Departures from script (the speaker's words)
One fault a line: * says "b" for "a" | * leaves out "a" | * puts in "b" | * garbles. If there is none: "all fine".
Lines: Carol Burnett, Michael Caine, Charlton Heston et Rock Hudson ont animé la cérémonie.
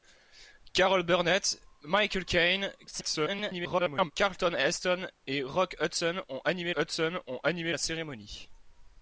* garbles
* puts in "Hudson ont animé"